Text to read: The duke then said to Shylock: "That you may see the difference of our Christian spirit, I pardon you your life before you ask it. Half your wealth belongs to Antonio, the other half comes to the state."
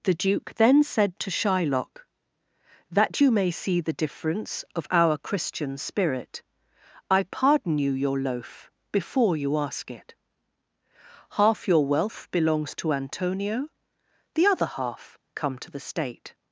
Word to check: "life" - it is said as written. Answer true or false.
false